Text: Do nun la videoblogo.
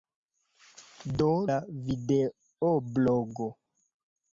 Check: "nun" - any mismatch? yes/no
yes